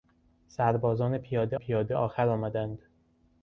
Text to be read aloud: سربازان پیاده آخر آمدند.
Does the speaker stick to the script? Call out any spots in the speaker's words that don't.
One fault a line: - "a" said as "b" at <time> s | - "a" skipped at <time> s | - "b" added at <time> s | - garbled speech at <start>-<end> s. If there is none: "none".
- "پیاده" added at 1.5 s